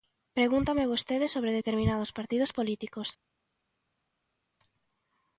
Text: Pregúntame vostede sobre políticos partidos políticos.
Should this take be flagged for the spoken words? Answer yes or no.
yes